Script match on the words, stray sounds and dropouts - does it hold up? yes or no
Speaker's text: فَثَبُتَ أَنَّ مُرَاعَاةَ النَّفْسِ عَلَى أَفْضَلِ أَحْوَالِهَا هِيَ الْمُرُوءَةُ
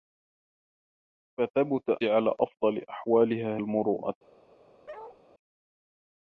no